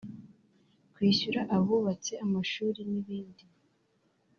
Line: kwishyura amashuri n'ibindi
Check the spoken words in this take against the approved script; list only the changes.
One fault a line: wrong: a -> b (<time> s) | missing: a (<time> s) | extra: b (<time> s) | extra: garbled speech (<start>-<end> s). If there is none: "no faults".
extra: abubatse (1.6 s)